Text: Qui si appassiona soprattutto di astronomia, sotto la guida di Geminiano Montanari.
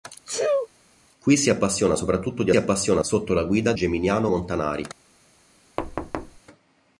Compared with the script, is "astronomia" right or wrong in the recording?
wrong